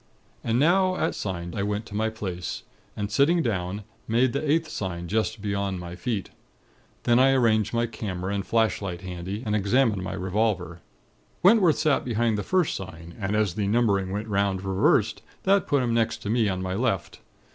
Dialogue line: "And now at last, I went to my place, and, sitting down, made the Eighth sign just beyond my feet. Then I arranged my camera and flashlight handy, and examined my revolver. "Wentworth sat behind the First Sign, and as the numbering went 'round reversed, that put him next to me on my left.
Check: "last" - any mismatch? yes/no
yes